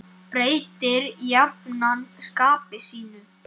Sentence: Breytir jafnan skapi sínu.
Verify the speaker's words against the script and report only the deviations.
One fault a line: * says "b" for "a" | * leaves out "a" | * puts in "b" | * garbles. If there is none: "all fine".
all fine